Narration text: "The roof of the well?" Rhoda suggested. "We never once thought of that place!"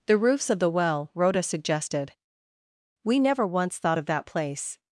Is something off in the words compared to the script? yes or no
yes